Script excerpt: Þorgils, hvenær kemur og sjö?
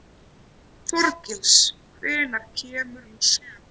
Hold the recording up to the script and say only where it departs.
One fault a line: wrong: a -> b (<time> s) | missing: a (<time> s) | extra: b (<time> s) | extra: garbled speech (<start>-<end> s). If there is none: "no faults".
no faults